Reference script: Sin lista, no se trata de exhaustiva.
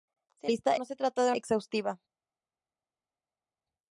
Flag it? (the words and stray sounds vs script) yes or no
no